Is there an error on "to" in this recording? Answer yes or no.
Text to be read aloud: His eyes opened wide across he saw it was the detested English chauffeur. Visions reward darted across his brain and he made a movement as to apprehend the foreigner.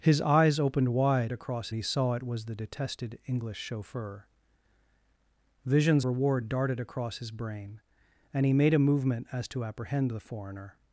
no